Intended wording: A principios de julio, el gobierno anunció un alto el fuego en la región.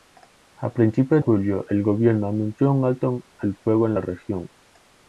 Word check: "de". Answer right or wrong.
wrong